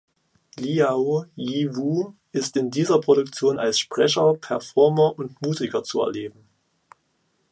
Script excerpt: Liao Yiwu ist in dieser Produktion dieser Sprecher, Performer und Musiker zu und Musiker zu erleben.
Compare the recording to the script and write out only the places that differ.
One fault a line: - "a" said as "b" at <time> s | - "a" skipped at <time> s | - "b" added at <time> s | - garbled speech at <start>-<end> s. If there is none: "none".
- "dieser" said as "als" at 3.6 s
- "und Musiker zu" skipped at 6.0 s